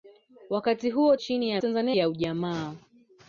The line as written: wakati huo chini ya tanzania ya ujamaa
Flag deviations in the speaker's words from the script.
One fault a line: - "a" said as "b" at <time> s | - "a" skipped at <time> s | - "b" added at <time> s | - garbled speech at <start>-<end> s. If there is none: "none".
none